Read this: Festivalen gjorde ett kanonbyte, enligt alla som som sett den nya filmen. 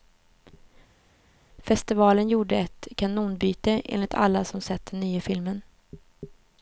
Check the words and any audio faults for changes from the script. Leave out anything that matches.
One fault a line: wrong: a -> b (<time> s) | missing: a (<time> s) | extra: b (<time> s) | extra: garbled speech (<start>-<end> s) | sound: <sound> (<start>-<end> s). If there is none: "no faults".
missing: som (4.6 s)